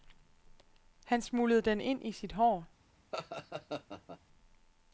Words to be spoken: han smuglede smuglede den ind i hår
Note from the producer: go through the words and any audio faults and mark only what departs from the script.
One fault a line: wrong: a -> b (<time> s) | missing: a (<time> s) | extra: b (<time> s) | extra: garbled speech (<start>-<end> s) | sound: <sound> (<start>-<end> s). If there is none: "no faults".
missing: smuglede (1.6 s)
extra: sit (2.1 s)
sound: laugh (3.1-4.2 s)